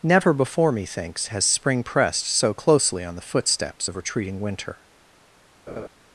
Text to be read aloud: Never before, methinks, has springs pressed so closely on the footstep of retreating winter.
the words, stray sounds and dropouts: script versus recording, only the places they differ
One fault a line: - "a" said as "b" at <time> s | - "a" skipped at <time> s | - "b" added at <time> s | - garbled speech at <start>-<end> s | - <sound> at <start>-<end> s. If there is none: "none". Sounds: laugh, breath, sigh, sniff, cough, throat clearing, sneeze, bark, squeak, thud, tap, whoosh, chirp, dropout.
- "springs" said as "spring" at 1.4 s
- "footstep" said as "footsteps" at 3.2 s
- laugh at 5.7-5.9 s